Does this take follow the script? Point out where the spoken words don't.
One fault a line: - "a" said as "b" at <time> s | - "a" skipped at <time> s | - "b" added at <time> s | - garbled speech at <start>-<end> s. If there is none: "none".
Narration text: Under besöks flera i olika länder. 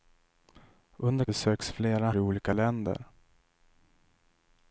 none